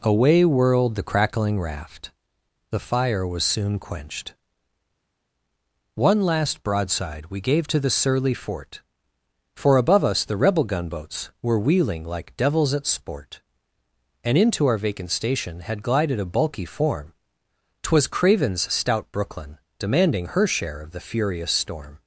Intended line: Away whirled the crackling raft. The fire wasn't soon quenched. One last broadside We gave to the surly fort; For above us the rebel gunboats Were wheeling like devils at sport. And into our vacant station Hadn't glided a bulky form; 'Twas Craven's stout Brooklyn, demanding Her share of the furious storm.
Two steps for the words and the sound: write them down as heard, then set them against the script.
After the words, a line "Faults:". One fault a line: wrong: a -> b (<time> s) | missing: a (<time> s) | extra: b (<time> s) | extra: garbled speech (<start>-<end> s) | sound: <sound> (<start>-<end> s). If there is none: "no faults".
Away whirled the crackling raft. The fire was soon quenched. One last broadside We gave to the surly fort; For above us the rebel gunboats Were wheeling like devils at sport. And into our vacant station Had glided a bulky form; 'Twas Craven's stout Brooklyn, demanding Her share of the furious storm.
Faults:
wrong: wasn't -> was (3.3 s)
wrong: Hadn't -> Had (15.6 s)